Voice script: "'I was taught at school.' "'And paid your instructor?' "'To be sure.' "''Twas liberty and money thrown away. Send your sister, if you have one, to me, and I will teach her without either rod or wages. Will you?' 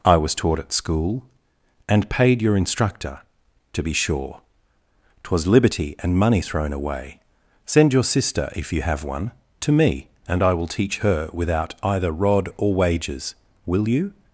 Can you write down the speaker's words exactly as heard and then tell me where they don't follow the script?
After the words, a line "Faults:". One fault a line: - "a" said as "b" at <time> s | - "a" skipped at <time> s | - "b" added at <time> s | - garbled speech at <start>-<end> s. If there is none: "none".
"'I was taught at school.' "'And paid your instructor?' "'To be sure.' "''Twas liberty and money thrown away. Send your sister, if you have one, to me, and I will teach her without either rod or wages. Will you?'
Faults:
none